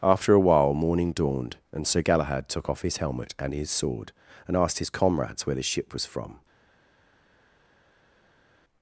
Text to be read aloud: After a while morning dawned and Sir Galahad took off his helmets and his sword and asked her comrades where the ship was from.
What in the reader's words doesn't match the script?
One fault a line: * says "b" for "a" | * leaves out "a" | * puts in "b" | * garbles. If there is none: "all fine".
* says "helmet" for "helmets"
* says "his" for "her"